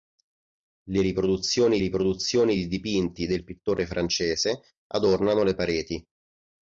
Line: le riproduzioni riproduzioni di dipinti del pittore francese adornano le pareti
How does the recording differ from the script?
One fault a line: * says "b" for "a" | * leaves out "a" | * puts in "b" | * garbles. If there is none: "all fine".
all fine